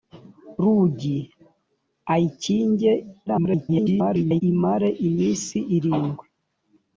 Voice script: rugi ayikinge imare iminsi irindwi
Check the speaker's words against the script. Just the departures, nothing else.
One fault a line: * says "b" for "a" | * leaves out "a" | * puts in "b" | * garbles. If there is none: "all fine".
* garbles